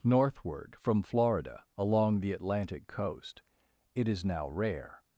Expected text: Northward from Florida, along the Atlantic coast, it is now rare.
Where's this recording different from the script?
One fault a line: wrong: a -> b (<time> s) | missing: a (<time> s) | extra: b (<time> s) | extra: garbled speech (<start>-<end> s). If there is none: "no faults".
no faults